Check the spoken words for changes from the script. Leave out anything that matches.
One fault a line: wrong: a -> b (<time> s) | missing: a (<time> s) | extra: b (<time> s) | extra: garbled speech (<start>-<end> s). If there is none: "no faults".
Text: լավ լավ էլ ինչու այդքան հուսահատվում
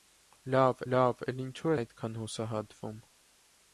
no faults